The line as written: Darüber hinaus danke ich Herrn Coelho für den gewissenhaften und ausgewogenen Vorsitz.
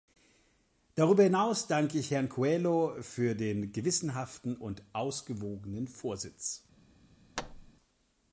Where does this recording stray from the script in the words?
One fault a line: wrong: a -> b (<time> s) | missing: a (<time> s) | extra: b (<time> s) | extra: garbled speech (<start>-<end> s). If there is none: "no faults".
no faults